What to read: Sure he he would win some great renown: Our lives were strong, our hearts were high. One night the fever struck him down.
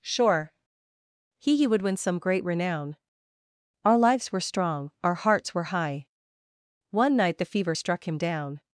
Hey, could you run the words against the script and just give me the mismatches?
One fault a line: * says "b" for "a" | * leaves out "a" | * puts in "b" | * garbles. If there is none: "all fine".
all fine